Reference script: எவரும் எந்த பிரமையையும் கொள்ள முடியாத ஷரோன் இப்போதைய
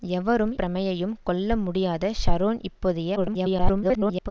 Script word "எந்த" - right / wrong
wrong